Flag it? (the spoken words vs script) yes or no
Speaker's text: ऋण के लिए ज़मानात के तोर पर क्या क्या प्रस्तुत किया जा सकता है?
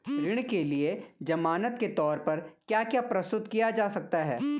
no